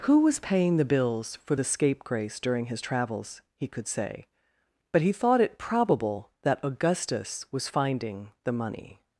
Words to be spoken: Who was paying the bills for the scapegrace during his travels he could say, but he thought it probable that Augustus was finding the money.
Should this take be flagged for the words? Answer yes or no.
no